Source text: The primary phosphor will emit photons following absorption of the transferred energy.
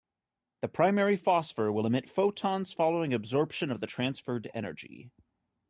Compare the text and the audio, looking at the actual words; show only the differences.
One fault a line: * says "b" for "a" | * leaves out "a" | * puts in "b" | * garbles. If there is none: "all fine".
all fine